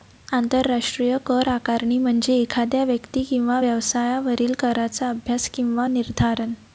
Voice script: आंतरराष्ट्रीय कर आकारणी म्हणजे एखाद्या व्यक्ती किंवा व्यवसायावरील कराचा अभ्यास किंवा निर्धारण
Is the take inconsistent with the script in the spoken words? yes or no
no